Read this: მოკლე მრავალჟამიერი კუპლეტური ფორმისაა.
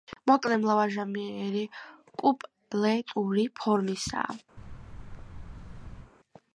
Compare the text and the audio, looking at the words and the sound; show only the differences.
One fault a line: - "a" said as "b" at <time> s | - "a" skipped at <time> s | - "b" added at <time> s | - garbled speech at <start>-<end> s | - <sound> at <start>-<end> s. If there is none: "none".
- thud at 4.6-6.1 s